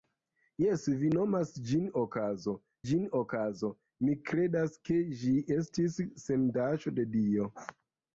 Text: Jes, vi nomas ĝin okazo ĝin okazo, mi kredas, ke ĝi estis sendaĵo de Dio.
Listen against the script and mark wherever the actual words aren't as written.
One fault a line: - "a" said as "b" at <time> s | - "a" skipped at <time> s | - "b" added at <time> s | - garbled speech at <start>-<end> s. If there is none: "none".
none